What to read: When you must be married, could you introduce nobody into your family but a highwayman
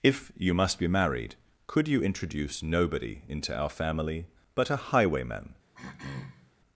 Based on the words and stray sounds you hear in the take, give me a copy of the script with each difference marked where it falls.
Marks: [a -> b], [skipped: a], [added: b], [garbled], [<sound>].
[When -> If] you must be married, could you introduce nobody into [your -> our] family but a highwayman [throat clearing]